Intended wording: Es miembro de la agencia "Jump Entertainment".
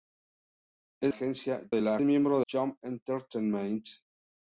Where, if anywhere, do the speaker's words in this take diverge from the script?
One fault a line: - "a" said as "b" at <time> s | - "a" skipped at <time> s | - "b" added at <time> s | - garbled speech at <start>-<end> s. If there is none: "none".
- "miembro" said as "agencia" at 1.1 s
- "agencia" said as "miembro" at 2.0 s